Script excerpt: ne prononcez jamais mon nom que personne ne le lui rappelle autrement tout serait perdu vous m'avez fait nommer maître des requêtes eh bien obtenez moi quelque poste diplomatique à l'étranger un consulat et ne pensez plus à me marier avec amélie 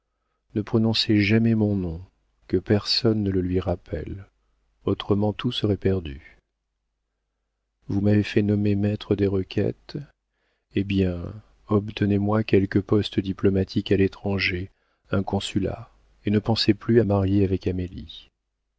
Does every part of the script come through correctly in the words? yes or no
no